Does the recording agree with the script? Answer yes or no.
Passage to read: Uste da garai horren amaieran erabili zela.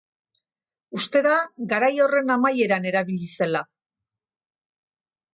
yes